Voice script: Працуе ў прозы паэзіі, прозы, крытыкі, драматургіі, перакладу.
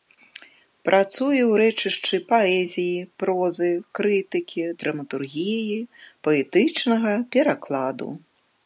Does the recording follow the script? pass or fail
fail